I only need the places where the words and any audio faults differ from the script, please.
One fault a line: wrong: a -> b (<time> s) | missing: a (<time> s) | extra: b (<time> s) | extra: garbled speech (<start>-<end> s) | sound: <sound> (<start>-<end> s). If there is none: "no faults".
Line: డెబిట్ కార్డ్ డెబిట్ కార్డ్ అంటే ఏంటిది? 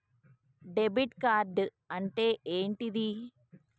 missing: డెబిట్ కార్డ్ (1.6 s)